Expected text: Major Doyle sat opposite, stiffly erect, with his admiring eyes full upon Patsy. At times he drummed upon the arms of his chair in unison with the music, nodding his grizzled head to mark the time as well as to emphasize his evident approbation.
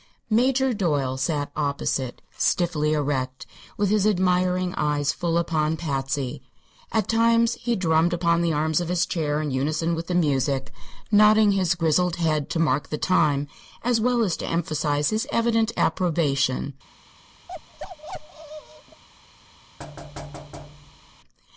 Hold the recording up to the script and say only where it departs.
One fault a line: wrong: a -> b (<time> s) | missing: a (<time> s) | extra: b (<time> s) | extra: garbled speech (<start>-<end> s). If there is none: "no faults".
no faults